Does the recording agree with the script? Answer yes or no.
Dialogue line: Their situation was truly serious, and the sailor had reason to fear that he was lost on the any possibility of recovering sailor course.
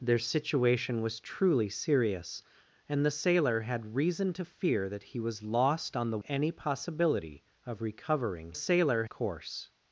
yes